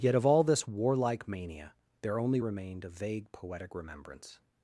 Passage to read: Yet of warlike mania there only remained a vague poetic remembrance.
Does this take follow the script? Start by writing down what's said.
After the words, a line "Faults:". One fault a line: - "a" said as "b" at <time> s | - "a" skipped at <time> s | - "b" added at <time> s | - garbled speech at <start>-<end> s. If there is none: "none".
Yet of all this warlike mania there only remained a vague poetic remembrance.
Faults:
- "all this" added at 0.2 s